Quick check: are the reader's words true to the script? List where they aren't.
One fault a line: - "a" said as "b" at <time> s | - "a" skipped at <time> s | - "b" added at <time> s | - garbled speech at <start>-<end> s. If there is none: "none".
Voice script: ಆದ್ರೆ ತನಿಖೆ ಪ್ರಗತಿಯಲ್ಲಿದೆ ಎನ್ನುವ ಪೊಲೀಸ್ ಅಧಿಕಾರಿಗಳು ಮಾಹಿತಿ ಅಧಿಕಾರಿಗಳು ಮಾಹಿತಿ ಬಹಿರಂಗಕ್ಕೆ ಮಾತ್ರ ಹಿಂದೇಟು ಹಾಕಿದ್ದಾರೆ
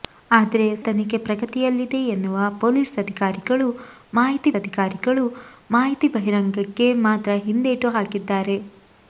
none